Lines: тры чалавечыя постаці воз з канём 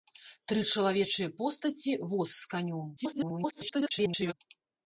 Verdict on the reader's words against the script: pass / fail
fail